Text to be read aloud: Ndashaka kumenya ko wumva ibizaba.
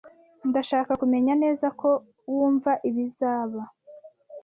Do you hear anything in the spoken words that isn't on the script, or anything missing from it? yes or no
yes